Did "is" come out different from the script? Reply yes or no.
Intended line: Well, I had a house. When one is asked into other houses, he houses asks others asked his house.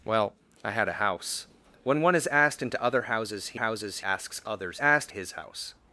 no